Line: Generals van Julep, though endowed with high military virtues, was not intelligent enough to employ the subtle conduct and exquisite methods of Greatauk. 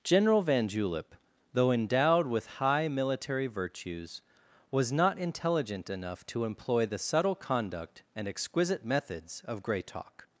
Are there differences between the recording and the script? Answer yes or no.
yes